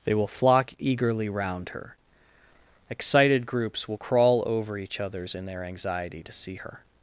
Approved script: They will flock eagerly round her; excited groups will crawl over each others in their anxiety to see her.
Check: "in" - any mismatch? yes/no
no